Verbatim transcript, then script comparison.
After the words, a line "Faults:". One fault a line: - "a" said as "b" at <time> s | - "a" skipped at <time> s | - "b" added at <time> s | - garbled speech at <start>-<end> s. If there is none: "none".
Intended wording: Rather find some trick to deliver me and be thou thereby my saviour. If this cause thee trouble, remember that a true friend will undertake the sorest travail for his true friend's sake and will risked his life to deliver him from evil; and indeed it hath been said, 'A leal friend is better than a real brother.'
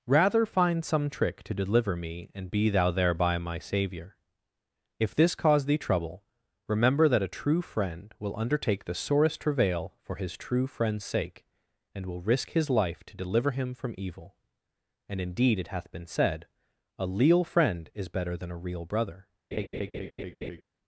Rather find some trick to deliver me and be thou thereby my saviour. If this cause thee trouble, remember that a true friend will undertake the sorest travail for his true friend's sake and will risk his life to deliver him from evil; and indeed it hath been said, 'A leal friend is better than a real brother.'
Faults:
- "risked" said as "risk" at 12.2 s